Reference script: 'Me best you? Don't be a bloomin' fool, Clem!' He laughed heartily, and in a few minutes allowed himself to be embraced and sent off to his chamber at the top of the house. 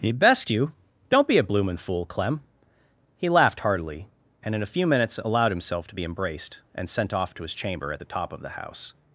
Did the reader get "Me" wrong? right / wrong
wrong